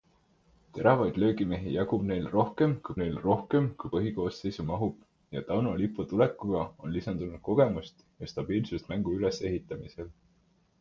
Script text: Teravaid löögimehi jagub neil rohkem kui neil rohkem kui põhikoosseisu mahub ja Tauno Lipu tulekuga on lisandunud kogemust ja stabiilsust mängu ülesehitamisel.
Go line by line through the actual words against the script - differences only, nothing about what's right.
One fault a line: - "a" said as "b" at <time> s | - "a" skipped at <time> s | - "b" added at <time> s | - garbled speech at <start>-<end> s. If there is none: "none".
none